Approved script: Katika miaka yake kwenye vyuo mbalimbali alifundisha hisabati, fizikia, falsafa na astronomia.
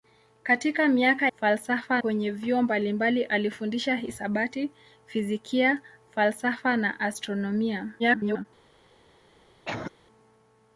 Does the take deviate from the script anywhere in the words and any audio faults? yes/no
yes